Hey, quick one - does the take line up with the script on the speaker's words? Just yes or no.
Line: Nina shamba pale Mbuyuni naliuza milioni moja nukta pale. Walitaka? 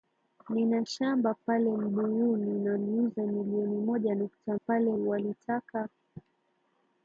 yes